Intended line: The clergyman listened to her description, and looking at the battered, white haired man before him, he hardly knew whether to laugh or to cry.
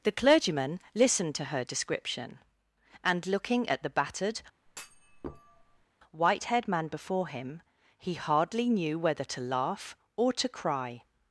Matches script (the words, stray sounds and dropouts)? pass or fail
fail